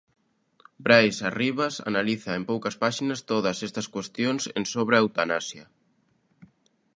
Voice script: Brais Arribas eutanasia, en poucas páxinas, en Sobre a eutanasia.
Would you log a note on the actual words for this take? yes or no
yes